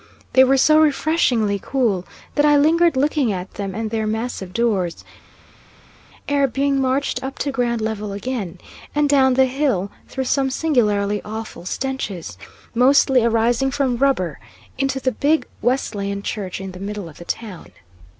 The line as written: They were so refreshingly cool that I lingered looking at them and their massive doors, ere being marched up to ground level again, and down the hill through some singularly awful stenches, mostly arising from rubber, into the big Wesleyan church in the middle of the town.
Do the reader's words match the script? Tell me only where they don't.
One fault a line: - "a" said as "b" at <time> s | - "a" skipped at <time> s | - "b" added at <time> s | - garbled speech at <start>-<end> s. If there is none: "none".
none